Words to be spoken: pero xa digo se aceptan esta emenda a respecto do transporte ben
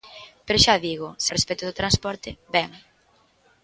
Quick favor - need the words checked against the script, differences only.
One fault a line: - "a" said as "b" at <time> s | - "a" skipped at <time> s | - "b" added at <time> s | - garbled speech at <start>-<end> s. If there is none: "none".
- "aceptan esta emenda" skipped at 1.3 s